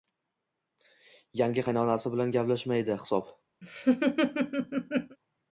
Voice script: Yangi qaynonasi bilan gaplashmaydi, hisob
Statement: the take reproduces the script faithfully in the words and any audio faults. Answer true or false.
false